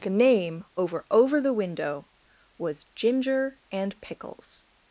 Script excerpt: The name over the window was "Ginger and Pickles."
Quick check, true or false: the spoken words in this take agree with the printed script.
false